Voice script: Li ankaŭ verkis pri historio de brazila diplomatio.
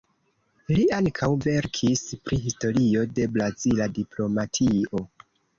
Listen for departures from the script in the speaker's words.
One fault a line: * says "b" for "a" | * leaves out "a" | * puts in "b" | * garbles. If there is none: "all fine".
all fine